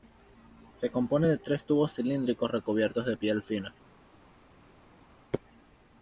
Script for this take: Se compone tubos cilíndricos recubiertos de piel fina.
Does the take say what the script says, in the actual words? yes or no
no